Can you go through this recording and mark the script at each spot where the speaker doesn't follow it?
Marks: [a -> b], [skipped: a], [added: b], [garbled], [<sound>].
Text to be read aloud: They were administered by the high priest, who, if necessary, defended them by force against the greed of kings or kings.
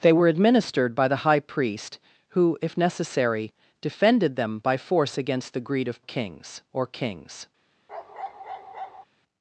They were administered by the high priest, who, if necessary, defended them by force against the greed of kings or kings. [bark]